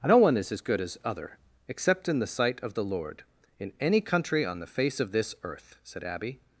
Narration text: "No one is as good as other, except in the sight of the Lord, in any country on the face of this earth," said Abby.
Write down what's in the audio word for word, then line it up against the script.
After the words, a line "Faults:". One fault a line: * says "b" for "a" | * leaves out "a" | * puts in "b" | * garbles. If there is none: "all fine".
"No one is as good as other, except in the sight of the Lord, in any country on the face of this earth," said Abby.
Faults:
all fine